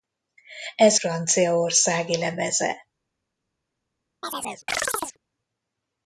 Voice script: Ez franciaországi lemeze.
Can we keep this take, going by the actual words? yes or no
yes